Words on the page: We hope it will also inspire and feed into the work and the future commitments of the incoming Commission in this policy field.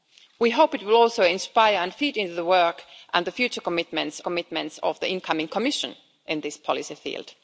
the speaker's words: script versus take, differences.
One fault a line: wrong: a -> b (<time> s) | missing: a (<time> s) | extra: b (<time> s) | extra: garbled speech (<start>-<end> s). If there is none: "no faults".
extra: commitments (4.2 s)